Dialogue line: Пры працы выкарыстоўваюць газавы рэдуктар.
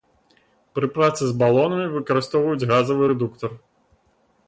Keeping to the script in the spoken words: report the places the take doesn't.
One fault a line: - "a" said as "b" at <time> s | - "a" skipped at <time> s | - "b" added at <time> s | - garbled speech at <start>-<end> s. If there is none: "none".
- "з балонамі" added at 1.3 s